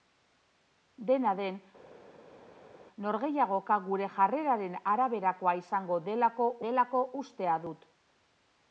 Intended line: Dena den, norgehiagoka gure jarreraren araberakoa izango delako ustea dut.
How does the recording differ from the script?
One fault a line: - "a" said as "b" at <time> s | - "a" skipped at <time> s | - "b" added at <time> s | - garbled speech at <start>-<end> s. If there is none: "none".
- "delako" added at 6.7 s